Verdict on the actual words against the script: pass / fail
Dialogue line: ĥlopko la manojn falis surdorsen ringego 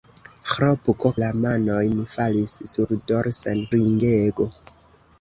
pass